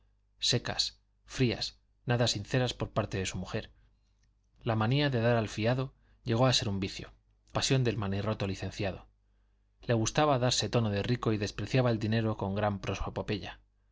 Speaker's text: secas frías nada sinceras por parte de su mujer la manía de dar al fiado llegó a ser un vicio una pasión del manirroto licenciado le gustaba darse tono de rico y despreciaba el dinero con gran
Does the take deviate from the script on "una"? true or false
true